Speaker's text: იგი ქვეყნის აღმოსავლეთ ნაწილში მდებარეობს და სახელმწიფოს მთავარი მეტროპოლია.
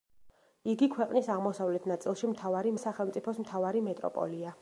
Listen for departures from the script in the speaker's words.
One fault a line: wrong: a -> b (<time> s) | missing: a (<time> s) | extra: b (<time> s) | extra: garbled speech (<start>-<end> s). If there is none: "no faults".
wrong: მდებარეობს -> მთავარი (2.4 s)